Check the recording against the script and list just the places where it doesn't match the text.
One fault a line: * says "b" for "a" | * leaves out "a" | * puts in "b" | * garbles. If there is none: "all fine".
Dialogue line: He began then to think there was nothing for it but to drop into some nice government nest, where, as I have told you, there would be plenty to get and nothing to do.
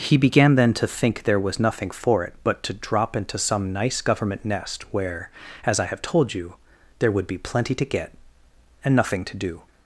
all fine